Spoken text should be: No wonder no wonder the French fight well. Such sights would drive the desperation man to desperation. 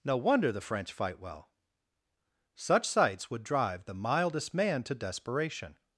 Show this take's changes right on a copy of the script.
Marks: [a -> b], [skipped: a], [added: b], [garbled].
No wonder [skipped: no wonder] the French fight well. Such sights would drive the [desperation -> mildest] man to desperation.